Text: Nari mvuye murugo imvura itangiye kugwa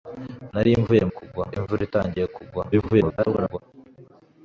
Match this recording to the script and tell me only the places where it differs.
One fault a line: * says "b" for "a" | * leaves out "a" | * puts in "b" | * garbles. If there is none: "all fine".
* says "kugwa" for "murugo"
* garbles